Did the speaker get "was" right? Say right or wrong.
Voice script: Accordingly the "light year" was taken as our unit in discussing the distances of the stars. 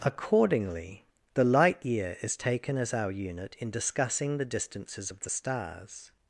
wrong